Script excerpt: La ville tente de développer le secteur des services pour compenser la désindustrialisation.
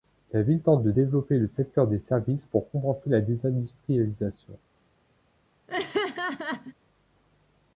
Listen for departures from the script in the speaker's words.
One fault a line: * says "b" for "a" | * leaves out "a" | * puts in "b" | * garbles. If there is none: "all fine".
all fine